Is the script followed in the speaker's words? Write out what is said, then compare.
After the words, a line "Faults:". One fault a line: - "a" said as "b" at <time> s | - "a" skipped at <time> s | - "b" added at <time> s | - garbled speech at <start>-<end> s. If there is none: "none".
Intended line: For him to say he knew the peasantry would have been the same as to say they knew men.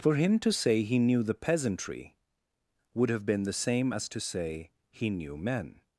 For him to say he knew the peasantry would have been the same as to say he knew men.
Faults:
- "they" said as "he" at 4.9 s